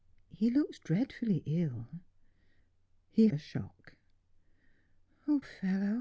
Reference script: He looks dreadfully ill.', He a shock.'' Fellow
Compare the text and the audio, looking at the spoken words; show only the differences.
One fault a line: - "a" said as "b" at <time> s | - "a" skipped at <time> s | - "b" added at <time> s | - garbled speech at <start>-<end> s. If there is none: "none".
none